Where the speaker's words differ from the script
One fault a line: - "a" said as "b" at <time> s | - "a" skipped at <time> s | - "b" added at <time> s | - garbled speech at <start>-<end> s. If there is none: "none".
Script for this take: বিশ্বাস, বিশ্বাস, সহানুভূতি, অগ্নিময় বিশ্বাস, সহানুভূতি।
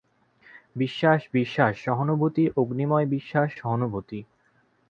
none